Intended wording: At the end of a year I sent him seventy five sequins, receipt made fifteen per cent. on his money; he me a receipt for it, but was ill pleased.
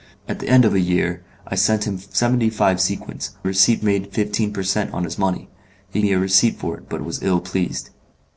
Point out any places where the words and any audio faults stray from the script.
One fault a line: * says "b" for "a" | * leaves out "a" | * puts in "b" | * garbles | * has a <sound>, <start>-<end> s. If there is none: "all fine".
all fine